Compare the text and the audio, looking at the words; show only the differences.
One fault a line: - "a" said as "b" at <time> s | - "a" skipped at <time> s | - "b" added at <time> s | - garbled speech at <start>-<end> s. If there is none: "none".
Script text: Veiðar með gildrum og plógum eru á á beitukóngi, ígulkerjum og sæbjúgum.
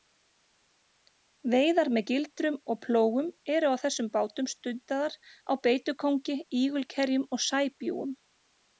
- "þessum bátum stundaðar" added at 3.8 s